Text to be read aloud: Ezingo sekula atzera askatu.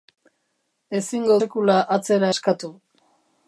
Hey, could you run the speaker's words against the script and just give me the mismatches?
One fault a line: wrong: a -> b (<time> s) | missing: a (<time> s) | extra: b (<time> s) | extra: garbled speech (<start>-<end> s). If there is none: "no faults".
no faults